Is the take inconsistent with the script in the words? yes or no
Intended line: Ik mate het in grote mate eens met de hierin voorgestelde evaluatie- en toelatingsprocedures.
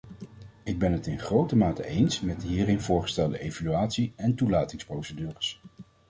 yes